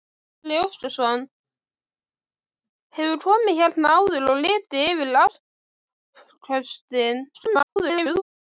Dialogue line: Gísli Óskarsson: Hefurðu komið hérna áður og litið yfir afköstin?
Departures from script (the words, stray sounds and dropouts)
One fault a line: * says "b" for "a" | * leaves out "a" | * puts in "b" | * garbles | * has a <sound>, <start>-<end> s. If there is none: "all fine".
* garbles